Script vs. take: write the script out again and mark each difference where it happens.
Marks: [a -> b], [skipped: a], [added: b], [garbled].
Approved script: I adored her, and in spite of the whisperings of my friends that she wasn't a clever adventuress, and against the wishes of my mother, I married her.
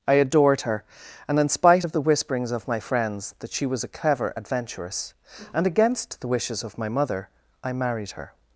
I adored her, and in spite of the whisperings of my friends that she [wasn't -> was] a clever adventuress, and against the wishes of my mother, I married her.